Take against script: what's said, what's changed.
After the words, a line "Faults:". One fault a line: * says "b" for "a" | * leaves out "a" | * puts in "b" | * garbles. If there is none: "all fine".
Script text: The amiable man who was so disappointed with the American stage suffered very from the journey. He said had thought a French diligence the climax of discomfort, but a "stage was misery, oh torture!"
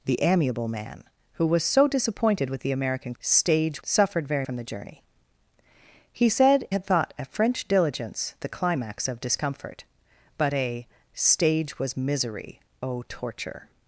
The amiable man who was so disappointed with the American stage suffered very from the journey. He said had thought a French diligence the climax of discomfort, but a "stage was misery, oh torture!"
Faults:
all fine